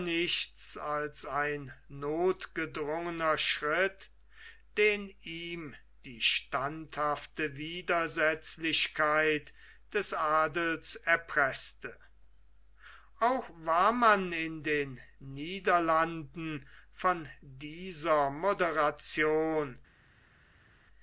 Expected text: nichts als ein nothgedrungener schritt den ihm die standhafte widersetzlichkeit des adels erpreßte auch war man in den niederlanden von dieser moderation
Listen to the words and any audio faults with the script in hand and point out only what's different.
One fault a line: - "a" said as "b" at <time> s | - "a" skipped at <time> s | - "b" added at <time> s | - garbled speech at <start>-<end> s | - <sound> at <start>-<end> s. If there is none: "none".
none